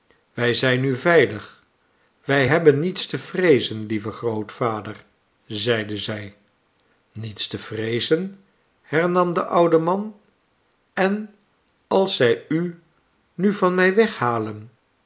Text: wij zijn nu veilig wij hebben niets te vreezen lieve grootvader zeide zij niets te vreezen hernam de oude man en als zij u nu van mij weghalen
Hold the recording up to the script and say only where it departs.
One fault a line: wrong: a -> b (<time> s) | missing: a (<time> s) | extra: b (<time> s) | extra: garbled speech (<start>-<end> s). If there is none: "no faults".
no faults